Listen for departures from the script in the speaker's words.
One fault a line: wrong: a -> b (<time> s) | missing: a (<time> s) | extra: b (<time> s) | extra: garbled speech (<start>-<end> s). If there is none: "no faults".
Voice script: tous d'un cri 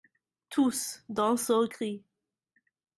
extra: seul (1.4 s)